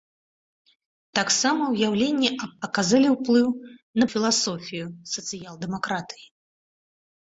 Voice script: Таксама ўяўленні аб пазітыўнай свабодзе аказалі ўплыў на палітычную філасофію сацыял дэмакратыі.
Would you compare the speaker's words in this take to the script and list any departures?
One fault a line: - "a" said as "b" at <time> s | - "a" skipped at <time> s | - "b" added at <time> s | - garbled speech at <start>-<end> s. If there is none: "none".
- "пазітыўнай свабодзе" skipped at 2.5 s
- "палітычную" skipped at 4.1 s